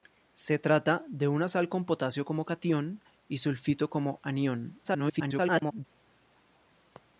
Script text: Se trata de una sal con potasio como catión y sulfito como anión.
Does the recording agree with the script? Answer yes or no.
no